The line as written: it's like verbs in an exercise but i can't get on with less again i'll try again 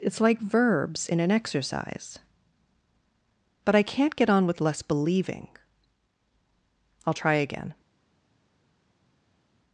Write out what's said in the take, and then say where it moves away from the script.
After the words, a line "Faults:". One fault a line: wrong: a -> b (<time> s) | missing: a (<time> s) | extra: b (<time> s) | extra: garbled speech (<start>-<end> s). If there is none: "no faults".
it's like verbs in an exercise but i can't get on with less believing i'll try again
Faults:
wrong: again -> believing (4.8 s)